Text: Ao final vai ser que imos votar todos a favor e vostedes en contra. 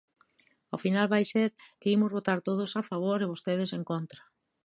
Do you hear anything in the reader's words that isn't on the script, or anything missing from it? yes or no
no